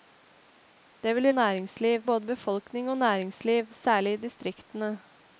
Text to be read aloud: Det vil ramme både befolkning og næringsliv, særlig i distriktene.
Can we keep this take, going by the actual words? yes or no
no